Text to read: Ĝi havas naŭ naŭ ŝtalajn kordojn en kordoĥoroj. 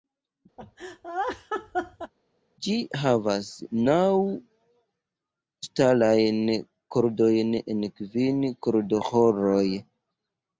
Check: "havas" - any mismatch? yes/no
no